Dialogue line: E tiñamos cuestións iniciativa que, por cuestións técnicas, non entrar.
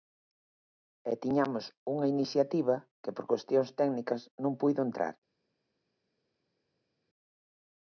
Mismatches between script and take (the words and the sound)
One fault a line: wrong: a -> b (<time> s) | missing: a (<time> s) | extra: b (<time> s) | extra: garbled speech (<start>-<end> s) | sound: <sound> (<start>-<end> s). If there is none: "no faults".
wrong: cuestións -> unha (1.9 s)
extra: puido (4.6 s)